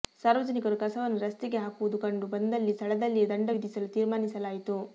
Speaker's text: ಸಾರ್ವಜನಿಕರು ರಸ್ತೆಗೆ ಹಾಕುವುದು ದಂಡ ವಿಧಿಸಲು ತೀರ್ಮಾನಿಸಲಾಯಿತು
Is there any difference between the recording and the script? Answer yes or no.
yes